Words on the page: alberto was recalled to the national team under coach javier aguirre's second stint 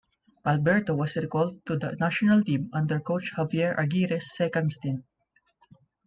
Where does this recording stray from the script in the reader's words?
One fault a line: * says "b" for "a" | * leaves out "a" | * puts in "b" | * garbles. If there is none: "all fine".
all fine